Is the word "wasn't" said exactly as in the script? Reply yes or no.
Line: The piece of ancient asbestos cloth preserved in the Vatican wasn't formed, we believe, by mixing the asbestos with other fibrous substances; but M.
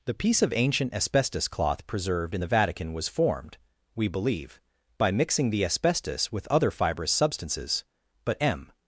no